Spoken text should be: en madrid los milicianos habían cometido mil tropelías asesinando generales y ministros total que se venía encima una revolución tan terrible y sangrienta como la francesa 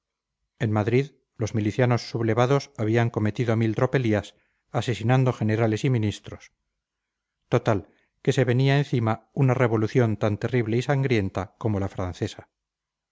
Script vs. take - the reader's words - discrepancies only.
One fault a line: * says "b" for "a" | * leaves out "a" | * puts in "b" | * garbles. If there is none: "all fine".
* puts in "sublevados"